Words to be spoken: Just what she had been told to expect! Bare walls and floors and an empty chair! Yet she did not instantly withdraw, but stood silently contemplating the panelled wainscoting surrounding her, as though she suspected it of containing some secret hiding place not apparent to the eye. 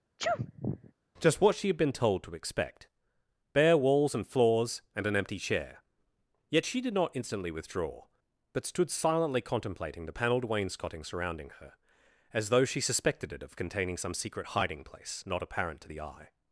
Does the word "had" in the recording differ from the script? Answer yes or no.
no